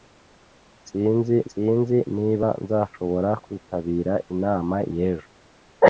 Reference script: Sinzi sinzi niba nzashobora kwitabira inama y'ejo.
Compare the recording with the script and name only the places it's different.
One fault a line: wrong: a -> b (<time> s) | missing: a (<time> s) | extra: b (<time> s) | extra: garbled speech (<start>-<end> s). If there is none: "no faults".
no faults